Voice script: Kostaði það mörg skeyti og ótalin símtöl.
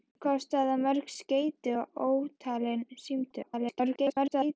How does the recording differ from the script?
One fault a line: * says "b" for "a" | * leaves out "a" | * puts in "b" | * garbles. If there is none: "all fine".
* garbles